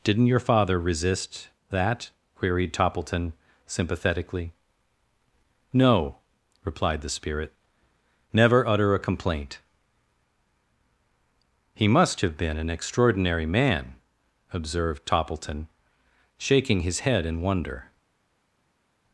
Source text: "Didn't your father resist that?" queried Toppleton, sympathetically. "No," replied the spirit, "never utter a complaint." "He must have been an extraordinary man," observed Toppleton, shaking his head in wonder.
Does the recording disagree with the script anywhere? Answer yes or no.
no